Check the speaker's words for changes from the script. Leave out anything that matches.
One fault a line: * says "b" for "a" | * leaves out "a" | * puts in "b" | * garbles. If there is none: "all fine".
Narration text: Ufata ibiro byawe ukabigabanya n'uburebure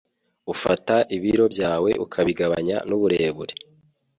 all fine